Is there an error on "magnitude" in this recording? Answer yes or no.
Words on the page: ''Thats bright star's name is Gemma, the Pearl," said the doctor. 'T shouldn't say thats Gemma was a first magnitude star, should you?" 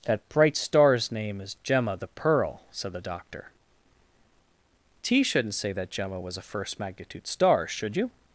no